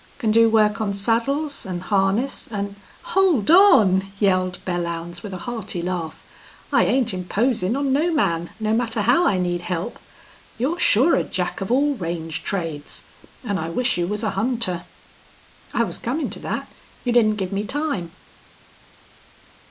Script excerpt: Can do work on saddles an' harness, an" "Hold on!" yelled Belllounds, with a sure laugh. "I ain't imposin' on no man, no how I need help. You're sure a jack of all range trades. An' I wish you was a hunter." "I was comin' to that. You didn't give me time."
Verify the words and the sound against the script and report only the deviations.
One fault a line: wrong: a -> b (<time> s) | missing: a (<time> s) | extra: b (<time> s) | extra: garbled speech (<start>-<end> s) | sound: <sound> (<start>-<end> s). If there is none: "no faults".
wrong: sure -> hearty (5.5 s)
extra: matter (8.7 s)